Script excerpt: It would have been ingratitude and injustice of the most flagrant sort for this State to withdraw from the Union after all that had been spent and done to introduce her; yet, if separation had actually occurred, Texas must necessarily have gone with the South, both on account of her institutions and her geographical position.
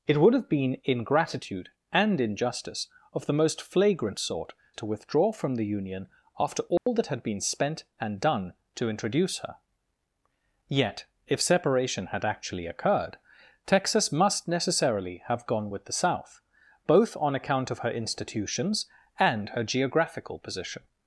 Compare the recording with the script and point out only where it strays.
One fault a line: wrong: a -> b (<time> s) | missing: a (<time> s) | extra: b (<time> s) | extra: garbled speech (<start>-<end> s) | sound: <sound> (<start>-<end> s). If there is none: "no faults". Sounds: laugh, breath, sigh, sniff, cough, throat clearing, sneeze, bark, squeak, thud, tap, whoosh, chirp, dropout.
missing: for this State (4.5 s)
sound: dropout (6.8-6.9 s)